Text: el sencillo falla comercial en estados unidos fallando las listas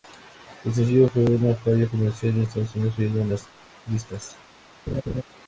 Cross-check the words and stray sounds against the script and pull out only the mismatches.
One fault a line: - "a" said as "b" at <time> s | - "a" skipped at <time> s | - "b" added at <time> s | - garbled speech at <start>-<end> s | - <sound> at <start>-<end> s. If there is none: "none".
- "fue una" added at 1.1 s
- "en" added at 3.2 s
- laugh at 4.9-5.2 s